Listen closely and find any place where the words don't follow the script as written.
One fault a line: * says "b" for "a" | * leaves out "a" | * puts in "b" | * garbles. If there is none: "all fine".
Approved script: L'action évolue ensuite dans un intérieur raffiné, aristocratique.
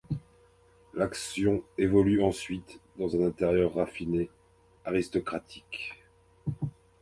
all fine